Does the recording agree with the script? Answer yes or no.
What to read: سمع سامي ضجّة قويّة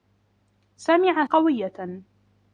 no